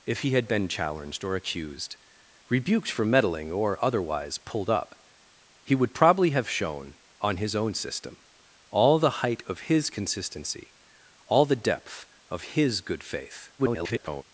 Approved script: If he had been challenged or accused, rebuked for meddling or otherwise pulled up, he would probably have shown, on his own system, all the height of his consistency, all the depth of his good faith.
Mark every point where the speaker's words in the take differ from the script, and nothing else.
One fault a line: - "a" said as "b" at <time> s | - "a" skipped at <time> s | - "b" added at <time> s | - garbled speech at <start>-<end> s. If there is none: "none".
- garbled speech at 13.6-14.2 s